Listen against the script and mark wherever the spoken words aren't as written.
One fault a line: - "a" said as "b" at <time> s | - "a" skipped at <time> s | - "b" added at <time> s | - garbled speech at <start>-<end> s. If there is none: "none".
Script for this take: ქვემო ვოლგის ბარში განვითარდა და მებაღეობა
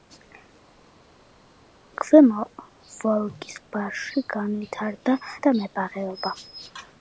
none